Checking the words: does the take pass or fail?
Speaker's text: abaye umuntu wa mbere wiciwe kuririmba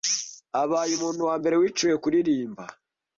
pass